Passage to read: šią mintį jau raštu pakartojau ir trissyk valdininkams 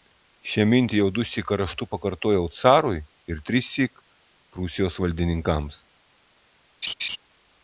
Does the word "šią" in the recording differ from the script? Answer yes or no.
no